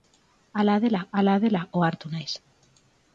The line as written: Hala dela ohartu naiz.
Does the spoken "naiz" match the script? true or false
true